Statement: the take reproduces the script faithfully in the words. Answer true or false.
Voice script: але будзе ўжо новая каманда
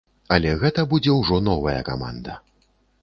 false